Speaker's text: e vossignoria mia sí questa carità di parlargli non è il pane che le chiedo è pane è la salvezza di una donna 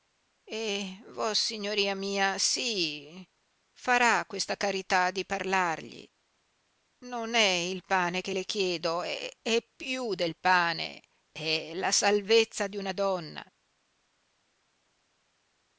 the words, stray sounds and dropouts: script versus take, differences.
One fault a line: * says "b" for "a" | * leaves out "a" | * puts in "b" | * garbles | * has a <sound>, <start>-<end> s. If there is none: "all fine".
* puts in "farà"
* puts in "piú del"